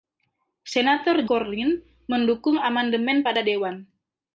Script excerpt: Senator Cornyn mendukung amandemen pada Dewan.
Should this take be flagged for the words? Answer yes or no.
no